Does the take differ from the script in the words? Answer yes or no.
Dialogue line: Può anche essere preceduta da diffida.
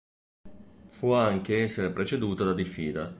no